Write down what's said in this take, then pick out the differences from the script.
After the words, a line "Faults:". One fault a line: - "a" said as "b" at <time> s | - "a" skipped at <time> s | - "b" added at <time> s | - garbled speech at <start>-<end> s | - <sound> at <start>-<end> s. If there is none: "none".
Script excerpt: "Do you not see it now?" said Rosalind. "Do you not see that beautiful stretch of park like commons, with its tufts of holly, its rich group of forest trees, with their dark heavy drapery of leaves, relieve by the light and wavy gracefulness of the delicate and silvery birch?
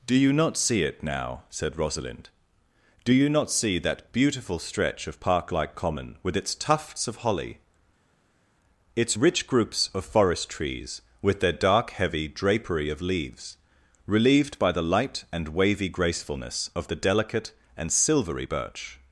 "Do you not see it now?" said Rosalind. "Do you not see that beautiful stretch of park like common, with its tufts of holly, its rich groups of forest trees, with their dark heavy drapery of leaves, relieved by the light and wavy gracefulness of the delicate and silvery birch?
Faults:
- "commons" said as "common" at 5.7 s
- "group" said as "groups" at 9.5 s
- "relieve" said as "relieved" at 14.0 s